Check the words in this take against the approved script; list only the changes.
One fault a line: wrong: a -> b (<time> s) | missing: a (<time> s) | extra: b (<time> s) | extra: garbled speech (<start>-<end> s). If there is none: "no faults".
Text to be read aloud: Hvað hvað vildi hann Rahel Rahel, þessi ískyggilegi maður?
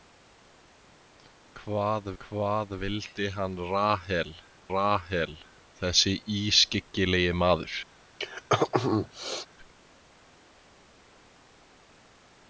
no faults